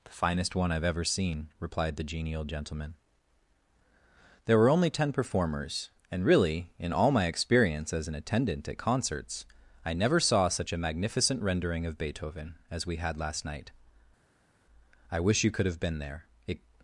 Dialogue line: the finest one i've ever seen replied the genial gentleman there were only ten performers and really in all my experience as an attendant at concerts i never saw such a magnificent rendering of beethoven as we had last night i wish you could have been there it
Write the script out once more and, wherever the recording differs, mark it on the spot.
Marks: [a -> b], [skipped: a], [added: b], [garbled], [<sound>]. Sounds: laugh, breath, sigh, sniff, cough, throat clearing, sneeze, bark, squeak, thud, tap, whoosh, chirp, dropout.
the finest one i've ever seen replied the genial gentleman there were only ten performers and really in all my experience as an attendant at concerts i never saw such a magnificent rendering of beethoven as we had last night i wish you could have been there it